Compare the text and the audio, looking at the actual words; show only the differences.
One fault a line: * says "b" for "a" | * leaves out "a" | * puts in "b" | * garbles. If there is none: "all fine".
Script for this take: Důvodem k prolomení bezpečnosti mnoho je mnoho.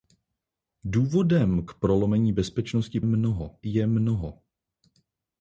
all fine